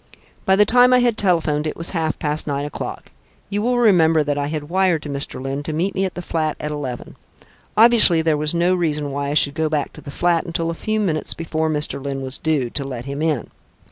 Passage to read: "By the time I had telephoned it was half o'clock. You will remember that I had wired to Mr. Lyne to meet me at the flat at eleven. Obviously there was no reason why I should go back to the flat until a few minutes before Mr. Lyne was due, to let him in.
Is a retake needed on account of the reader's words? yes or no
yes